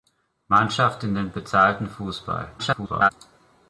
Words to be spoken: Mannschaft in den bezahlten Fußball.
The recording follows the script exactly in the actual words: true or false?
false